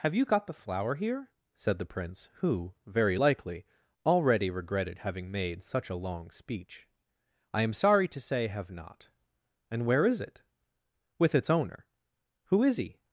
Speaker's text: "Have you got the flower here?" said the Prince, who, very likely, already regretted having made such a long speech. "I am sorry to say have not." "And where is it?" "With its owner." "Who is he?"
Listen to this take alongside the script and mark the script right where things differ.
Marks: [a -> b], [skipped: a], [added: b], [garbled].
"Have you got the flower here?" said the Prince, who, very likely, already regretted having made such a long speech. "I am sorry to say have not." "And where is it?" "With its owner." "Who is he?"